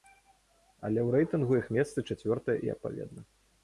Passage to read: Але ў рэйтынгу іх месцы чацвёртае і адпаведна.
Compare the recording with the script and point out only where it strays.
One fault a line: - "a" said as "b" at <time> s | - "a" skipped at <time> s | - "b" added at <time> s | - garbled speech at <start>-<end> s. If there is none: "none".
none